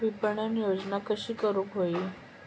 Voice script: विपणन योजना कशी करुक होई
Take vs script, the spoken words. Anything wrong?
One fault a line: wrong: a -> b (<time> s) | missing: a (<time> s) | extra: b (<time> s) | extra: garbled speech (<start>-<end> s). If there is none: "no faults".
no faults